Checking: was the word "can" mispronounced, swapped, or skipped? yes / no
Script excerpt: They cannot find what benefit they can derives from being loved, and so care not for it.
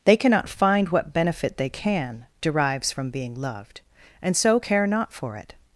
no